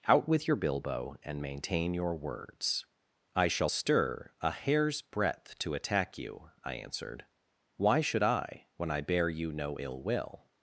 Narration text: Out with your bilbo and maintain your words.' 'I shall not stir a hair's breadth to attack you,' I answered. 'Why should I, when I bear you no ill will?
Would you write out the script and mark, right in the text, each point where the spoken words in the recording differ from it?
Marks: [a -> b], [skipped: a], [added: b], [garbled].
Out with your bilbo and maintain your words.' 'I shall [skipped: not] stir a hair's breadth to attack you,' I answered. 'Why should I, when I bear you no ill will?